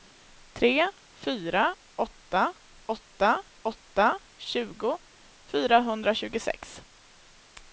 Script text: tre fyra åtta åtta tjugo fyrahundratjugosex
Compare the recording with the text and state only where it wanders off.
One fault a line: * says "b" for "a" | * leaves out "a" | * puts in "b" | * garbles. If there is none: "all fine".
* puts in "åtta"